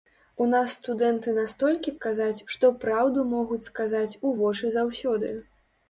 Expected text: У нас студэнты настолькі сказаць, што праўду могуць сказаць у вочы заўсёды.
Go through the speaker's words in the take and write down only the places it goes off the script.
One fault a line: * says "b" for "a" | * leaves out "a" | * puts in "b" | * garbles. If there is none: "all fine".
all fine